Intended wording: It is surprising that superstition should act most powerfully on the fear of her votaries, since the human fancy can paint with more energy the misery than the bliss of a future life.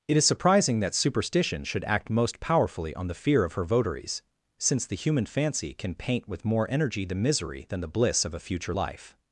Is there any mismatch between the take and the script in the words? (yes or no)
no